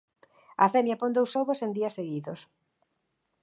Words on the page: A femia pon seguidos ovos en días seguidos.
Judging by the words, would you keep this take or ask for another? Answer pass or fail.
fail